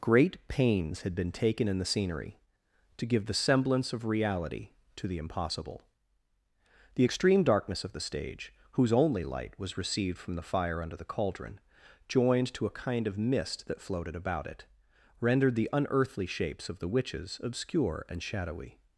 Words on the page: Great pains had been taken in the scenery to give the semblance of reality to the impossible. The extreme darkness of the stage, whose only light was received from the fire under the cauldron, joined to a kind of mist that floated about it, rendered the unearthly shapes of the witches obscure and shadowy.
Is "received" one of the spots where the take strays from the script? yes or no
no